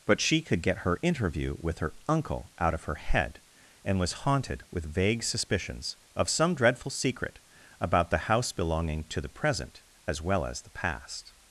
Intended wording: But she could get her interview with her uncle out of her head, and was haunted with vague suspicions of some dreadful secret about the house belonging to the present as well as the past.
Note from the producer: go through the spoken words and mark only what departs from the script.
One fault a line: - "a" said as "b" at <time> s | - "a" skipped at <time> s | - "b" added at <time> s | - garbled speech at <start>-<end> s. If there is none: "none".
none